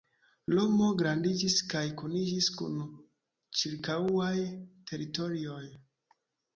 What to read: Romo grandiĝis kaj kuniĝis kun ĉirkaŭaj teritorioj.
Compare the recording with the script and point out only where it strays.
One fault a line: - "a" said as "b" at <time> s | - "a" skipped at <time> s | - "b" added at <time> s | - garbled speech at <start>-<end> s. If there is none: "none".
none